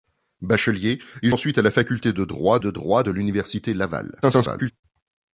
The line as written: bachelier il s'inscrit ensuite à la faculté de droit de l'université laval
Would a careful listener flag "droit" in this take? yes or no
no